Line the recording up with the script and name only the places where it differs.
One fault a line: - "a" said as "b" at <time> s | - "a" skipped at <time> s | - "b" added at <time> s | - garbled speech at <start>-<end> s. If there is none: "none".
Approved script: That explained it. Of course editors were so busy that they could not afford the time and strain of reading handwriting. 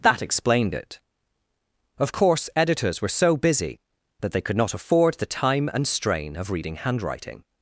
none